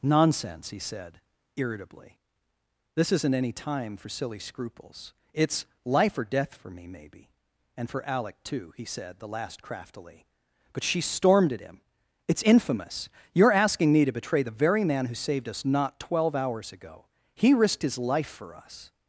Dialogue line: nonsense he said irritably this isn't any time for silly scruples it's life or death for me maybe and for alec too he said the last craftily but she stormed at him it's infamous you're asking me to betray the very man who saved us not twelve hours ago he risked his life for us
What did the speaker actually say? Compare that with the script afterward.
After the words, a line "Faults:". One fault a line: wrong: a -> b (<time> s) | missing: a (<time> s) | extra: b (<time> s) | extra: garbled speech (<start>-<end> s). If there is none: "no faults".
nonsense he said irritably this isn't any time for silly scruples it's life or death for me maybe and for alec too he said the last craftily but she stormed at him it's infamous you're asking me to betray the very man who saved us not twelve hours ago he risked his life for us
Faults:
no faults